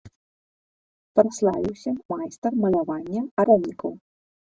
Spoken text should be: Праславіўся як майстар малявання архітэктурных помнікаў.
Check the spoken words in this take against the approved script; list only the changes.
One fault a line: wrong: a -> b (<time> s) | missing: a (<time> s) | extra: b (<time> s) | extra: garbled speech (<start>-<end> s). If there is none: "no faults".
missing: як (1.9 s)
missing: архітэктурных (3.2 s)